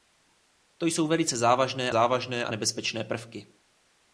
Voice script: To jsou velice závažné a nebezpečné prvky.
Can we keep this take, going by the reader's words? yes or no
no